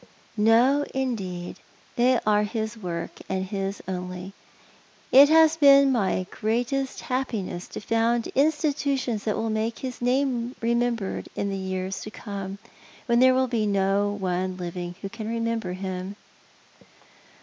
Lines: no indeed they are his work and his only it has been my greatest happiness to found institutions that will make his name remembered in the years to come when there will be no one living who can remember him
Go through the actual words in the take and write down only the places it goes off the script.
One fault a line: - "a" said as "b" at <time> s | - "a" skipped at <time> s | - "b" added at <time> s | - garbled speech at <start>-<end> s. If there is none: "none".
none